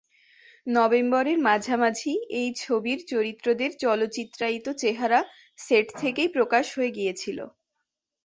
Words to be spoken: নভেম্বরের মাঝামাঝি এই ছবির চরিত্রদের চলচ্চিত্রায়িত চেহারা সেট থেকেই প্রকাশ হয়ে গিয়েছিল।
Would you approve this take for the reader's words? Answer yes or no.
yes